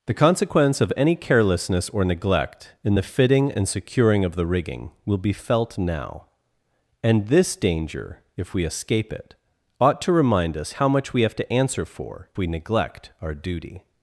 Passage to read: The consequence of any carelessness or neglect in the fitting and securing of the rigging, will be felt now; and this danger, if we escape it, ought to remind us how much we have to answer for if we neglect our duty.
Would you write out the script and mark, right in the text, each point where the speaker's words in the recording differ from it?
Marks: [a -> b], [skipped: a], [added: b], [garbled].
The consequence of any carelessness or neglect in the fitting and securing of the rigging, will be felt now; and this danger, if we escape it, ought to remind us how much we have to answer for [skipped: if] we neglect our duty.